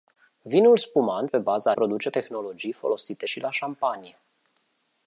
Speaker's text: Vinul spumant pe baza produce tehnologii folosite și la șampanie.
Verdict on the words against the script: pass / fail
pass